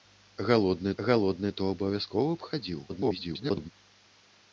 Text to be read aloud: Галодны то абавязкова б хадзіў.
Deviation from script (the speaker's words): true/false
true